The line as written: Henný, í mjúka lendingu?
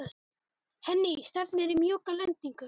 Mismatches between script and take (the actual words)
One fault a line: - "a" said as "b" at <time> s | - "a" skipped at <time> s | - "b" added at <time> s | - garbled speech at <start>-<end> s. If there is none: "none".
- "stefnir" added at 1.3 s